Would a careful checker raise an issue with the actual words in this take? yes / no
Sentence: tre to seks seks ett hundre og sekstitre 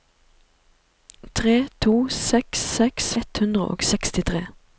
no